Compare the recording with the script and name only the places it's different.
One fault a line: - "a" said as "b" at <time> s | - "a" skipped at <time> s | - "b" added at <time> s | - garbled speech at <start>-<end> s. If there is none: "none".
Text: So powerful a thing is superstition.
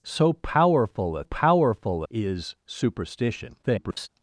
- "thing" said as "powerful" at 1.2 s
- garbled speech at 3.6-4.1 s